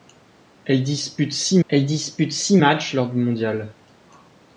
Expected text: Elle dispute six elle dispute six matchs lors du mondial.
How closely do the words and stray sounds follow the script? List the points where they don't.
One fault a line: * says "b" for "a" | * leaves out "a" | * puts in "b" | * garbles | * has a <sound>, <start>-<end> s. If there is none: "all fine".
all fine